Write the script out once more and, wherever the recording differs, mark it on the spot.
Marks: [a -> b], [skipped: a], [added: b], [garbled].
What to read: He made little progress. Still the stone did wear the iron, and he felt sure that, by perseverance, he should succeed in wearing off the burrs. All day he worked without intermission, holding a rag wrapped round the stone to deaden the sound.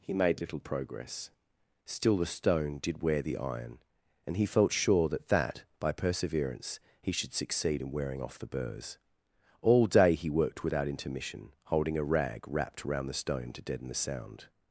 He made little progress. Still the stone did wear the iron, and he felt sure that, [added: that] by perseverance, he should succeed in wearing off the burrs. All day he worked without intermission, holding a rag wrapped round the stone to deaden the sound.